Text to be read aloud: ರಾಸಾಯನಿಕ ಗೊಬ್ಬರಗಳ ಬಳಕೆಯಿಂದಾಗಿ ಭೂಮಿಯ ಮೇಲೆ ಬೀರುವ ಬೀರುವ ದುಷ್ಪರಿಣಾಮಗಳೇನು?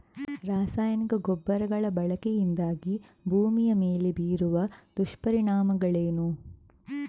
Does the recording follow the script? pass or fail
fail